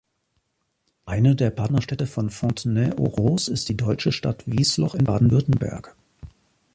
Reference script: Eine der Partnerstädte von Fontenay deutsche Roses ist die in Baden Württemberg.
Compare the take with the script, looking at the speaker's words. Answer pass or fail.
fail